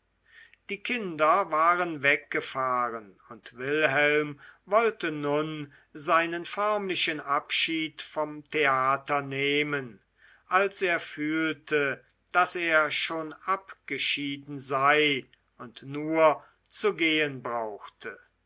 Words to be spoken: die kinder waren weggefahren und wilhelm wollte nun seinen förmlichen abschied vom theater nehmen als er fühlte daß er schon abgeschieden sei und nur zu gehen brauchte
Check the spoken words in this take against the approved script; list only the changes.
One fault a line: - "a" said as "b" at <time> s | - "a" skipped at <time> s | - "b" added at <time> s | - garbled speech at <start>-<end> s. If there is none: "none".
none